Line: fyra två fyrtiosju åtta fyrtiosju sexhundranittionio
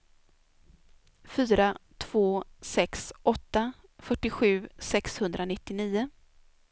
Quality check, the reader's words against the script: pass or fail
fail